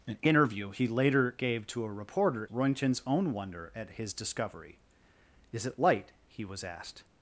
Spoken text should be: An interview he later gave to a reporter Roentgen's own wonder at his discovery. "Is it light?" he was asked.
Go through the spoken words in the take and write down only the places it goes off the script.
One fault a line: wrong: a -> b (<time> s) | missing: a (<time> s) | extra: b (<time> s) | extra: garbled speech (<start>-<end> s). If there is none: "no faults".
no faults